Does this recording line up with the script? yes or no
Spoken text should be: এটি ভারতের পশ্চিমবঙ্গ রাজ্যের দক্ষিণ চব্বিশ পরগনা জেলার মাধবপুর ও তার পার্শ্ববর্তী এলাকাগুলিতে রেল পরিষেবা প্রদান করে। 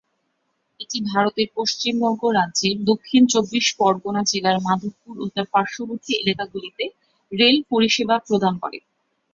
yes